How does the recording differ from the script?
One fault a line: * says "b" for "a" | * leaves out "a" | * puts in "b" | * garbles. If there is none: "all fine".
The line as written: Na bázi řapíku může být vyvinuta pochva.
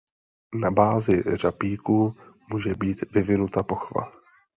all fine